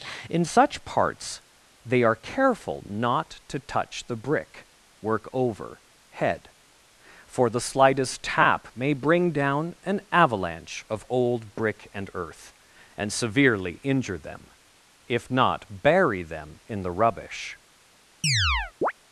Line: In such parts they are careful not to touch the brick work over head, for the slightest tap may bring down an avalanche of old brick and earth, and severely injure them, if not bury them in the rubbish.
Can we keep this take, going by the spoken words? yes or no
yes